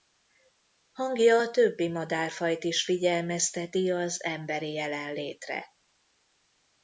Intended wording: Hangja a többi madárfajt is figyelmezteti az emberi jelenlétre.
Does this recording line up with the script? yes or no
yes